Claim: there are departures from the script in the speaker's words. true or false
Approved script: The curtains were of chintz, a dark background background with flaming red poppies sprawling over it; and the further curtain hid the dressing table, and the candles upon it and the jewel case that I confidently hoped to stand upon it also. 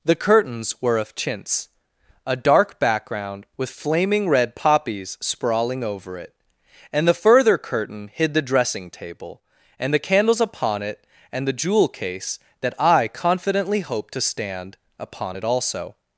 true